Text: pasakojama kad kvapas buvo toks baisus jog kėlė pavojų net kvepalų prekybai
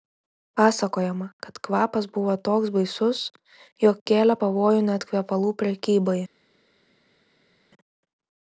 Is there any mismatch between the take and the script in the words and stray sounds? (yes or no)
no